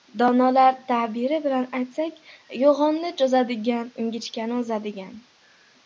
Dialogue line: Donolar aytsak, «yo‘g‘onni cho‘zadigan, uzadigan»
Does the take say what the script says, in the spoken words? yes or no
no